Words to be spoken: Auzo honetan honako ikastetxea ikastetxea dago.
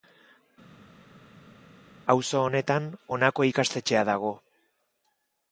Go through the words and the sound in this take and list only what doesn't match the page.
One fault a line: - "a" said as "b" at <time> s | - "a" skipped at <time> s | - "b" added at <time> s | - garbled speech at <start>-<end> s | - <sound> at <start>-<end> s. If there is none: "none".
- "ikastetxea" skipped at 4.0 s